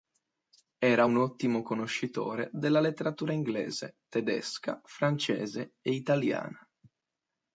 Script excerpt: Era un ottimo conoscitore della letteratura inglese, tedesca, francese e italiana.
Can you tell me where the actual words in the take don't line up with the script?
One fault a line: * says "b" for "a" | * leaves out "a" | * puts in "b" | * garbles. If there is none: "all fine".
all fine